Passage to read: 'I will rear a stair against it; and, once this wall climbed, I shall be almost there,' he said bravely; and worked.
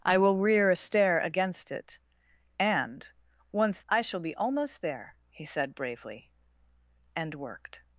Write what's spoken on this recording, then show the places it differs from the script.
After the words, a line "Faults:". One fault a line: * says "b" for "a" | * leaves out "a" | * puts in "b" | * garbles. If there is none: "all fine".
'I will rear a stair against it; and, once I shall be almost there,' he said bravely; and worked.
Faults:
* leaves out "this wall climbed"